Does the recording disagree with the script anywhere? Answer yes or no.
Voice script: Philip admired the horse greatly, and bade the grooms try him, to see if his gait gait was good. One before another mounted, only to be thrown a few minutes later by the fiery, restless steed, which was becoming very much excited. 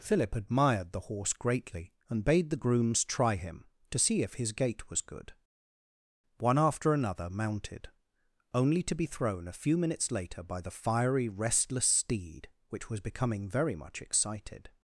yes